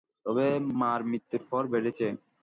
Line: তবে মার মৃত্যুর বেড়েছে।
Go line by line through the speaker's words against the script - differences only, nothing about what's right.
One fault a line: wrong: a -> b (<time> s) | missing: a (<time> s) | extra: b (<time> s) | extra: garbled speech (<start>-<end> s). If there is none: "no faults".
extra: পর (1.5 s)